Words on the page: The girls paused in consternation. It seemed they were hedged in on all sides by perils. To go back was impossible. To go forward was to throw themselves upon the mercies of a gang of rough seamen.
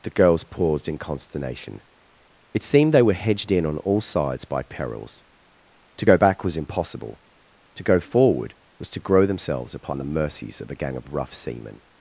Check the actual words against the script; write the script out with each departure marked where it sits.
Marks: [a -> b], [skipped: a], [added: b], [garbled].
The girls paused in consternation. It seemed they were hedged in on all sides by perils. To go back was impossible. To go forward was to [throw -> grow] themselves upon the mercies of a gang of rough seamen.